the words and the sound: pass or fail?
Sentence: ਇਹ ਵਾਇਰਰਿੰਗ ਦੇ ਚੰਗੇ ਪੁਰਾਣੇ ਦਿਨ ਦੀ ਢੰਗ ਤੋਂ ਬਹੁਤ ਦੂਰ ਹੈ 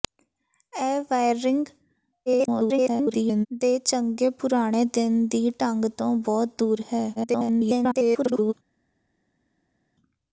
fail